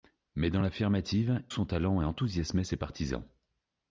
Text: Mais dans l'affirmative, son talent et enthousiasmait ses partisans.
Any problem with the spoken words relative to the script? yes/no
no